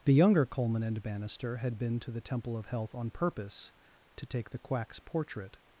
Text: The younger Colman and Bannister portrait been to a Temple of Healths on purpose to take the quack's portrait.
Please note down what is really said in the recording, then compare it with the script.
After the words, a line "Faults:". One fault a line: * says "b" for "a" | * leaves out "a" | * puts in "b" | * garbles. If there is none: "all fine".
The younger Colman and Bannister had been to the Temple of Health on purpose to take the quack's portrait.
Faults:
* says "had" for "portrait"
* says "the" for "a"
* says "Health" for "Healths"